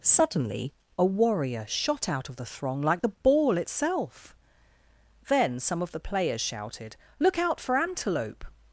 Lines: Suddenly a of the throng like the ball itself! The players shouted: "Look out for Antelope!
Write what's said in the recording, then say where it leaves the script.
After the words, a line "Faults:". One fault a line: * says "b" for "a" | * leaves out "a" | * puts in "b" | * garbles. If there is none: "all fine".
Suddenly a warrior shot out of the throng like the ball itself! Then some of the players shouted: "Look out for Antelope!
Faults:
* puts in "warrior shot out"
* puts in "Then some of"